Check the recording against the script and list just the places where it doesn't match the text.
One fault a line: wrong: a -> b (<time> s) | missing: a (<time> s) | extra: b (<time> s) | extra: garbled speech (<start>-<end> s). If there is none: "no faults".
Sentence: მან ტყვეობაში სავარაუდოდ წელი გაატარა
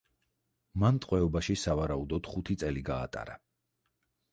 extra: ხუთი (2.3 s)